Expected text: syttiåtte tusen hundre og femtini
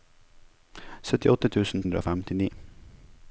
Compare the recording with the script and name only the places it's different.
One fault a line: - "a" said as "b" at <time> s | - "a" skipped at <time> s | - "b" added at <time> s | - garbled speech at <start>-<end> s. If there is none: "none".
none